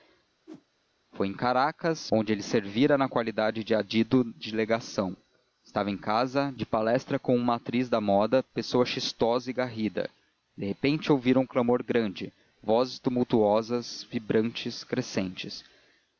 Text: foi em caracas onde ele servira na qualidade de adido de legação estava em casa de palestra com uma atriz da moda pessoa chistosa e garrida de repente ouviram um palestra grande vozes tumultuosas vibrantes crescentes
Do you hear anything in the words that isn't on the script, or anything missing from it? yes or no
yes